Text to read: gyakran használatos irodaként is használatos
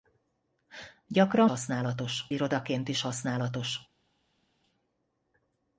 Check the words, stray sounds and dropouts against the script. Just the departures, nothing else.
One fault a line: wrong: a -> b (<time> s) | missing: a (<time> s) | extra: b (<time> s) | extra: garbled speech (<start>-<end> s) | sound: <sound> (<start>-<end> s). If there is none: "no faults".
no faults